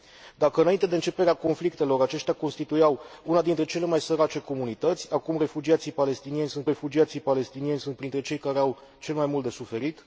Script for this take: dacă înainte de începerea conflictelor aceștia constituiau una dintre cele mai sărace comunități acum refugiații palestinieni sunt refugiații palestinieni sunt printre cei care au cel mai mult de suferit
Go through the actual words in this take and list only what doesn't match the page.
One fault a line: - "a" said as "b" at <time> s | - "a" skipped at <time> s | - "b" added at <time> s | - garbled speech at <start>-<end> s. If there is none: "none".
none